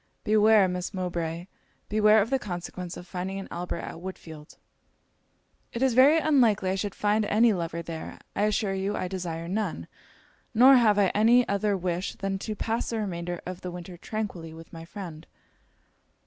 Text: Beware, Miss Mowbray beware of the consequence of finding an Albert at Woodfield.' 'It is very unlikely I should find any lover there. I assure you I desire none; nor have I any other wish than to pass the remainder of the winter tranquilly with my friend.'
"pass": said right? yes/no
yes